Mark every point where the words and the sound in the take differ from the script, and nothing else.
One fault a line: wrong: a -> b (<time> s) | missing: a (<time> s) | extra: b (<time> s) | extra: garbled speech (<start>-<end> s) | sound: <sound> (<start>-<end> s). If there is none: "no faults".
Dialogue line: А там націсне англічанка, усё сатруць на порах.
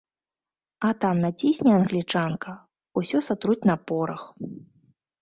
no faults